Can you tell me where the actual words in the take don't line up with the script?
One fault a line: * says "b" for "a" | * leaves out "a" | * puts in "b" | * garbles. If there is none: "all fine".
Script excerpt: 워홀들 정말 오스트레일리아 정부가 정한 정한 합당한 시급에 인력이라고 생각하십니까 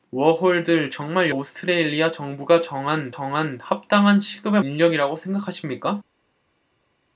all fine